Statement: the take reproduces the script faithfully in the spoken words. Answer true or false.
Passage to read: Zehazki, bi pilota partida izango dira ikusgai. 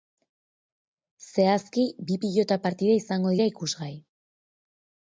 true